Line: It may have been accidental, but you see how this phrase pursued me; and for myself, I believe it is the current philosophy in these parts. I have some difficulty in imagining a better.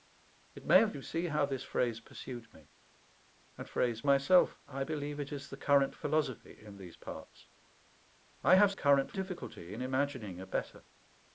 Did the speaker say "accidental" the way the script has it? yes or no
no